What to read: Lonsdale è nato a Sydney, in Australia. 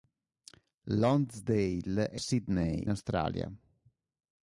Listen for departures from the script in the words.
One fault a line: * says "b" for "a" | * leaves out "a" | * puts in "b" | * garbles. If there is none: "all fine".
* leaves out "nato"
* leaves out "in"